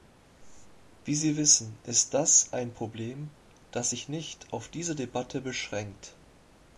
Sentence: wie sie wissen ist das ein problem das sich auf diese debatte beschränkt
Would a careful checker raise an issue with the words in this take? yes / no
yes